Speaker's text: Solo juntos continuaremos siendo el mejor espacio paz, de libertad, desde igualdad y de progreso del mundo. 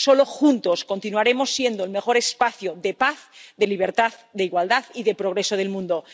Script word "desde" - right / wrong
wrong